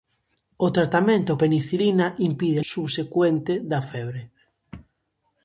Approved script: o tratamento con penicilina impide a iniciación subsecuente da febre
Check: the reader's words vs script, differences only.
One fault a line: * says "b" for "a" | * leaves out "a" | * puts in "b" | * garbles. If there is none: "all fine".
* leaves out "con"
* leaves out "iniciación"